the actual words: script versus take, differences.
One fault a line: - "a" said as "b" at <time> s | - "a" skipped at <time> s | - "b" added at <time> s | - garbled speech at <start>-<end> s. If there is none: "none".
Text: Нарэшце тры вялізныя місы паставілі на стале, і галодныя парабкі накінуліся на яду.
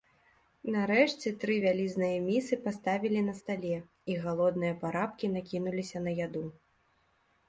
none